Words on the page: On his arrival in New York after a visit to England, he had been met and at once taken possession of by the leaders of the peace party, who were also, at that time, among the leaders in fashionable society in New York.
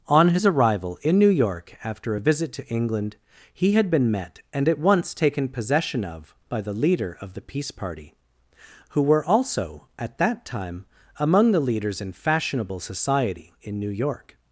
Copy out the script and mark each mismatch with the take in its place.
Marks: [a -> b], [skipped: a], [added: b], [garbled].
On his arrival in New York after a visit to England, he had been met and at once taken possession of by the [leaders -> leader] of the peace party, who were also, at that time, among the leaders in fashionable society in New York.